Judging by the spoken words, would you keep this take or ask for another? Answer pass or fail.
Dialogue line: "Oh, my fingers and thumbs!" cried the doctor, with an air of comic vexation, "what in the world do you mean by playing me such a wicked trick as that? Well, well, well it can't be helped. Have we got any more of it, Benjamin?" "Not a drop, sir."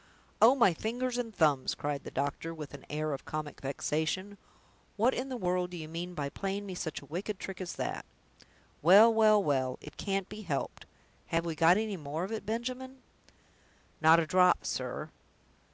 pass